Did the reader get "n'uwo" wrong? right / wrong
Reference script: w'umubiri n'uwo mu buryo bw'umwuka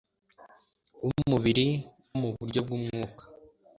wrong